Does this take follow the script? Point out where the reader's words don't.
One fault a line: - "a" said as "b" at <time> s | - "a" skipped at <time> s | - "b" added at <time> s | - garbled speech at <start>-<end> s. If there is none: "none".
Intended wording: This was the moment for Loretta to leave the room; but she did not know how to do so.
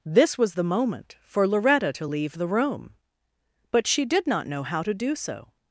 none